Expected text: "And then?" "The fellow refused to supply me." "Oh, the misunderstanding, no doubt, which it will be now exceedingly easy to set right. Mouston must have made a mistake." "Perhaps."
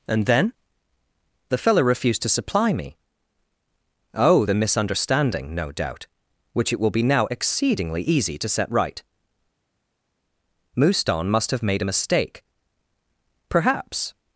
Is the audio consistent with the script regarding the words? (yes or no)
yes